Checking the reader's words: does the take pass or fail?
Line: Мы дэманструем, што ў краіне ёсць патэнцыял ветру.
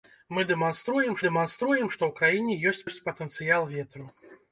fail